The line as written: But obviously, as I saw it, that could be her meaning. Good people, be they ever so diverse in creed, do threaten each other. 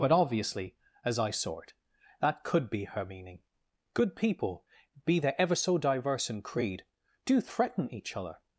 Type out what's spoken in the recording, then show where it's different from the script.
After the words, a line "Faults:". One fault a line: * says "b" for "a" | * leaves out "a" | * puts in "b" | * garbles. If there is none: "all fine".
But obviously, as I saw it, that could be her meaning. Good people, be they ever so diverse in creed, do threaten each other.
Faults:
all fine